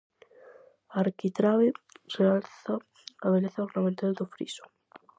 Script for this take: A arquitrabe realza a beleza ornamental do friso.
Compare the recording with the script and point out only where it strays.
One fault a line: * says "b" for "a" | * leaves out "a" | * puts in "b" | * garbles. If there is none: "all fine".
all fine